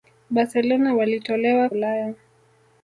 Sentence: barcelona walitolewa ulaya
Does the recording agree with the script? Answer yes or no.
yes